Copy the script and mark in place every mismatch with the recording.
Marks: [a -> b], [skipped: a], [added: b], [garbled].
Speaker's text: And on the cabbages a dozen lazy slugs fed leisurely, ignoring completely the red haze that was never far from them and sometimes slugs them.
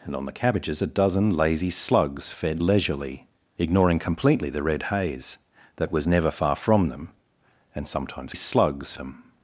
And on the cabbages a dozen lazy slugs fed leisurely, ignoring completely the red haze that was never far from them and sometimes slugs them.